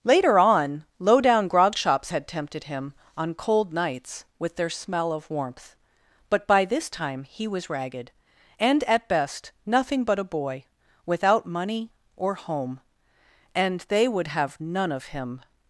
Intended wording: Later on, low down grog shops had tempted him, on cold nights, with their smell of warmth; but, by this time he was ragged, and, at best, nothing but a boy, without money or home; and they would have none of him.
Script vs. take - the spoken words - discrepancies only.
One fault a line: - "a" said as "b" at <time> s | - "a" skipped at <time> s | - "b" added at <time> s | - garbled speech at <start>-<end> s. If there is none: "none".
none